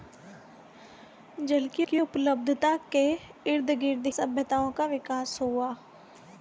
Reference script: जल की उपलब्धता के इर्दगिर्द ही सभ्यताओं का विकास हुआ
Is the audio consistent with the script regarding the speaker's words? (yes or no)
no